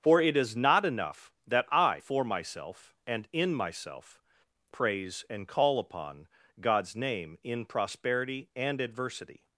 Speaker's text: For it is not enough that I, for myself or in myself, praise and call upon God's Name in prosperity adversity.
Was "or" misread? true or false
true